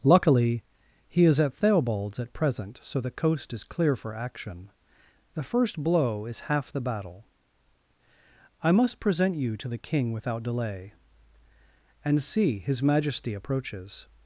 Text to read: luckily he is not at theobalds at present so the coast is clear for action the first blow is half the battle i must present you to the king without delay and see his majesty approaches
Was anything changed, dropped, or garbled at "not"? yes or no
yes